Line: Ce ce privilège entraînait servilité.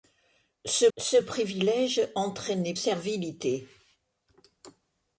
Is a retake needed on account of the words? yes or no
no